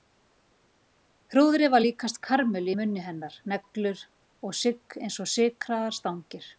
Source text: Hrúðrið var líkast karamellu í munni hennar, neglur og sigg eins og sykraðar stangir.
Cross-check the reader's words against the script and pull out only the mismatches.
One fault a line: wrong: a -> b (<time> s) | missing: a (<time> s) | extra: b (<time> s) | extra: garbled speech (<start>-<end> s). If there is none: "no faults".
no faults